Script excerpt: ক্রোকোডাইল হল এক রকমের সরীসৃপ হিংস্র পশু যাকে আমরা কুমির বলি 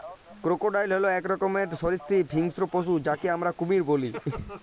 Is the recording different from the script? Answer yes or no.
no